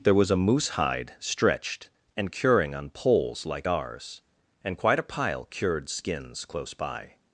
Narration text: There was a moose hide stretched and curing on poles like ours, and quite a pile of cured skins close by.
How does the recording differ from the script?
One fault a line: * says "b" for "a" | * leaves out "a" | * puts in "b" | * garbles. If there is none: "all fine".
* leaves out "of"